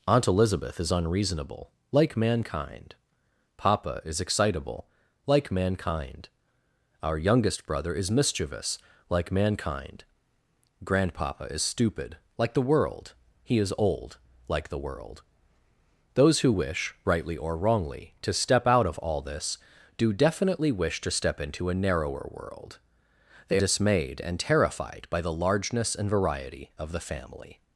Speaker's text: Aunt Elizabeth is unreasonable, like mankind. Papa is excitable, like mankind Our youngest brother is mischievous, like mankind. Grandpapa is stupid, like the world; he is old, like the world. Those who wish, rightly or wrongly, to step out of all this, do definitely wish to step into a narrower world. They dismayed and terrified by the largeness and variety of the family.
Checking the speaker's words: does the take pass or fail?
pass